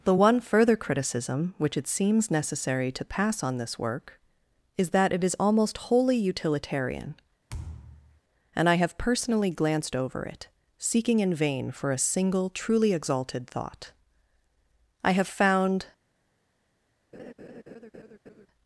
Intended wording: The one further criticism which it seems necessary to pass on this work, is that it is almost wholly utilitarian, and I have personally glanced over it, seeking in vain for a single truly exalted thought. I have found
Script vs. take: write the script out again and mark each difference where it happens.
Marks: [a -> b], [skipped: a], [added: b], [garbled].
The one further criticism which it seems necessary to pass on this work, is that it is almost wholly utilitarian, and I have personally glanced over it, seeking in vain for a single truly exalted thought. I have found